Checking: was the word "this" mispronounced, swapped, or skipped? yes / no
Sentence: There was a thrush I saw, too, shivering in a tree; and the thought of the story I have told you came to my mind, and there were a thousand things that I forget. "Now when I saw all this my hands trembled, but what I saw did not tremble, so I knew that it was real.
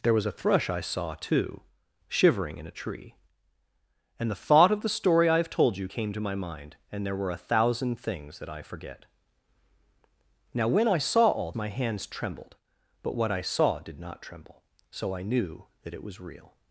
yes